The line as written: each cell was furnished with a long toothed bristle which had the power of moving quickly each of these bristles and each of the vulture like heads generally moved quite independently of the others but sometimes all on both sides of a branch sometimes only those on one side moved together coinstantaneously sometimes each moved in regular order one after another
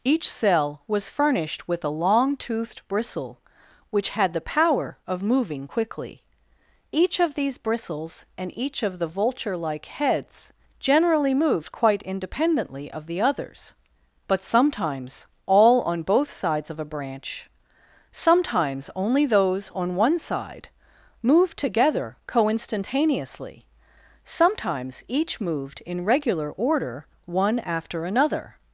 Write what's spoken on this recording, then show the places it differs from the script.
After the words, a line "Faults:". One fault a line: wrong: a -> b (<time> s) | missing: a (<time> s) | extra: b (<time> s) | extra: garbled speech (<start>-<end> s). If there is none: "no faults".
each cell was furnished with a long toothed bristle which had the power of moving quickly each of these bristles and each of the vulture like heads generally moved quite independently of the others but sometimes all on both sides of a branch sometimes only those on one side moved together coinstantaneously sometimes each moved in regular order one after another
Faults:
no faults